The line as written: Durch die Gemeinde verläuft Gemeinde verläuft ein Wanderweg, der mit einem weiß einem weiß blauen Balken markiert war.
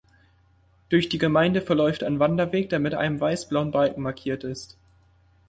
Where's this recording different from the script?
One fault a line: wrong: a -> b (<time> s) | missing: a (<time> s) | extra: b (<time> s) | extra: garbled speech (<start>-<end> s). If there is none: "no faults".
missing: Gemeinde verläuft (2.0 s)
missing: einem weiß (3.5 s)
wrong: war -> ist (4.4 s)